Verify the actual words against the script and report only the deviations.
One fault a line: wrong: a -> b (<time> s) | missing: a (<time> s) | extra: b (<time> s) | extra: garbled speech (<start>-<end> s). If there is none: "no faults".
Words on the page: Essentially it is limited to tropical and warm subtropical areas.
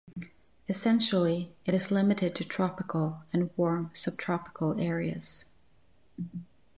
no faults